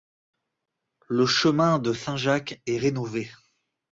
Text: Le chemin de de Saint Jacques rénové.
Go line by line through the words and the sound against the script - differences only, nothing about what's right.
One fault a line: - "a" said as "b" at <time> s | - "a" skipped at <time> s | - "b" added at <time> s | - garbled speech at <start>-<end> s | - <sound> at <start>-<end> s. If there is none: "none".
- "de" skipped at 1.9 s
- "est" added at 2.7 s